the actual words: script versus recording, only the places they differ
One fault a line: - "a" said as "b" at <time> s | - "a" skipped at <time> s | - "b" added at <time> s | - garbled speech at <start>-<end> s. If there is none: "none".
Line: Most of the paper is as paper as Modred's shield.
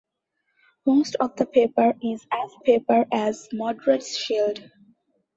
none